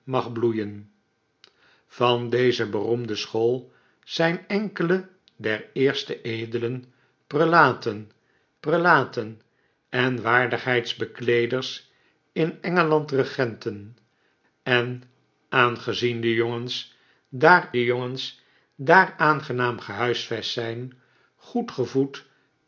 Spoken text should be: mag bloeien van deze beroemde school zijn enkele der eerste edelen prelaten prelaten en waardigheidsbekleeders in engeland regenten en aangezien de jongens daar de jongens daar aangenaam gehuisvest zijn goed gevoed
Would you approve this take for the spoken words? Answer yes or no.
yes